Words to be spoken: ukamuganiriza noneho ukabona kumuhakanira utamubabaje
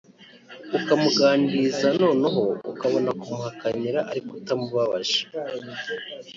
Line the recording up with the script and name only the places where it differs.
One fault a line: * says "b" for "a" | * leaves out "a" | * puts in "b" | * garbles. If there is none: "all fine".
* puts in "ariko"